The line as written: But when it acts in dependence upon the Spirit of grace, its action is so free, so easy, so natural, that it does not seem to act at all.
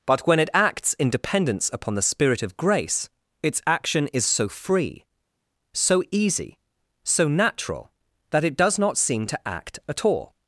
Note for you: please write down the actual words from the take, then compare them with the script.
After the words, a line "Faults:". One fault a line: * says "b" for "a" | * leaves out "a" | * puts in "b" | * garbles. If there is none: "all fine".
But when it acts in dependence upon the Spirit of grace, its action is so free, so easy, so natural, that it does not seem to act at all.
Faults:
all fine